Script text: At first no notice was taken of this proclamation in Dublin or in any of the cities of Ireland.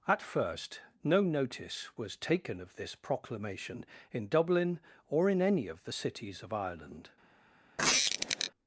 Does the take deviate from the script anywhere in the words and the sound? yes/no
yes